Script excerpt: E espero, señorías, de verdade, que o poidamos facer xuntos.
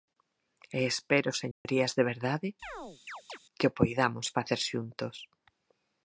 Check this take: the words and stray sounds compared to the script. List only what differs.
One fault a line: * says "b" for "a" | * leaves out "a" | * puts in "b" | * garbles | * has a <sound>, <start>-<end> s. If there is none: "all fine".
* has a dropout, 1.5-1.7 s
* has a chirp, 2.6-3.4 s